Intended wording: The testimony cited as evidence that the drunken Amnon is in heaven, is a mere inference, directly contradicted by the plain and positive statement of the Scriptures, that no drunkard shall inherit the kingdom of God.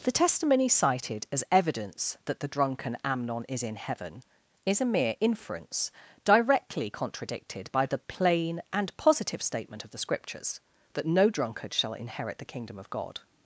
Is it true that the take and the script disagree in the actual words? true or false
false